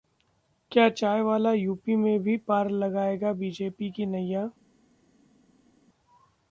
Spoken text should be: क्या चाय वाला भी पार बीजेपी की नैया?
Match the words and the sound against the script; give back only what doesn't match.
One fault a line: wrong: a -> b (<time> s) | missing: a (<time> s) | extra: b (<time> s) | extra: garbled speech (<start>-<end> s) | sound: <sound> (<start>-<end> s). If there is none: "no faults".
extra: यूपी में (1.5 s)
extra: लगाएगा (2.7 s)